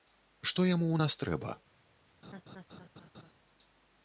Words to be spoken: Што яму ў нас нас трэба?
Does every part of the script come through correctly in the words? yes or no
no